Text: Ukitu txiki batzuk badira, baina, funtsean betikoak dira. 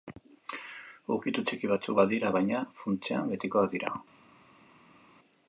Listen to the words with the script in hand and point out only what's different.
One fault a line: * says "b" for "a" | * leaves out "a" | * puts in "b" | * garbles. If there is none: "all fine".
all fine